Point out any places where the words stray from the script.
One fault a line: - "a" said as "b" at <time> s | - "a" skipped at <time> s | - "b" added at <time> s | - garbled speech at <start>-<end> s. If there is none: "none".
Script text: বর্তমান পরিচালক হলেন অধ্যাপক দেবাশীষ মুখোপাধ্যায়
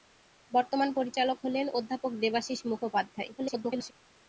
- garbled speech at 3.4-3.9 s